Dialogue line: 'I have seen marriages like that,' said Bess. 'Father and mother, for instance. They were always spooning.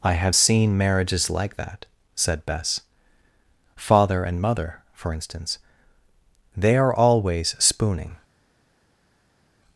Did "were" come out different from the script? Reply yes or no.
yes